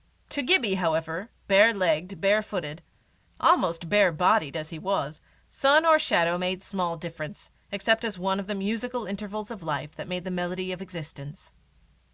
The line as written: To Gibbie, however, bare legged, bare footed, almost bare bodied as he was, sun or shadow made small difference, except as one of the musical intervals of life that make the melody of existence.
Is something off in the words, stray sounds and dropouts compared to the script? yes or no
no